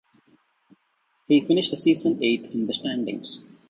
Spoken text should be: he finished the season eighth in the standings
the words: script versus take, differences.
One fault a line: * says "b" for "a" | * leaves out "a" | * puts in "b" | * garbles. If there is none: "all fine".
all fine